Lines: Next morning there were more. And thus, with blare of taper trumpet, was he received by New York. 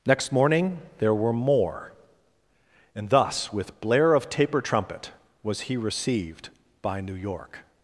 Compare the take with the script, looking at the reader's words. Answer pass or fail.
pass